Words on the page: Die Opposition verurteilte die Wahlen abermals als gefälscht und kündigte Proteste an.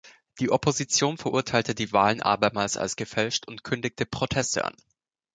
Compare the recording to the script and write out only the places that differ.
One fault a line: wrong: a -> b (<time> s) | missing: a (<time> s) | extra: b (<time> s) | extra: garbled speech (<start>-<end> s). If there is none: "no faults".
no faults